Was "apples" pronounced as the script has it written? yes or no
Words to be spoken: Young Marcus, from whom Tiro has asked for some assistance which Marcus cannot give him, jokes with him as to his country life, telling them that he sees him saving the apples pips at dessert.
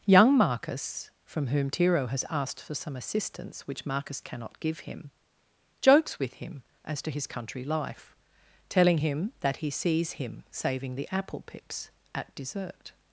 no